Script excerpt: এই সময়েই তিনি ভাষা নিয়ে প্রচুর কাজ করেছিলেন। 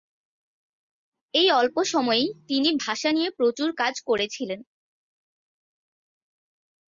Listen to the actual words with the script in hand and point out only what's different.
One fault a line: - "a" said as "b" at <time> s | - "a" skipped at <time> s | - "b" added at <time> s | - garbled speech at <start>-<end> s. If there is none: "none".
- "অল্প" added at 1.5 s